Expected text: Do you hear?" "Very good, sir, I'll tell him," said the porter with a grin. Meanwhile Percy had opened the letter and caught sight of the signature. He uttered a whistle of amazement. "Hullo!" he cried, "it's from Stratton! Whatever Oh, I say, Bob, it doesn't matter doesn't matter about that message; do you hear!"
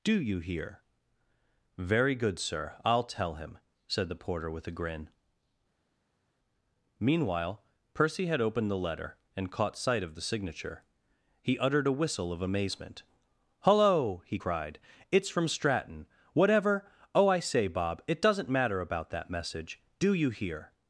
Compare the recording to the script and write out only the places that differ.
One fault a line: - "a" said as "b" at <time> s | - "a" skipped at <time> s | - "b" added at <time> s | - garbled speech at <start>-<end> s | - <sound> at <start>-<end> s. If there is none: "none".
- "doesn't matter" skipped at 18.8 s